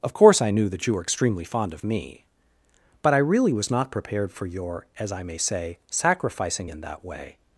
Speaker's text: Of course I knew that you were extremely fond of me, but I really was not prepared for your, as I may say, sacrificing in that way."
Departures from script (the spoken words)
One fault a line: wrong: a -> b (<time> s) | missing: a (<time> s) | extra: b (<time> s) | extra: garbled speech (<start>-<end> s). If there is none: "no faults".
no faults